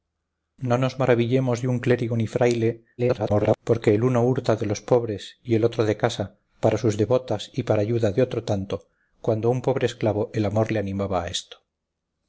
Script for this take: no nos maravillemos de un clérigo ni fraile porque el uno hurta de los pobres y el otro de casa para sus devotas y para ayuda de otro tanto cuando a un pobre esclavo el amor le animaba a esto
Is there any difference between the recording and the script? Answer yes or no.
yes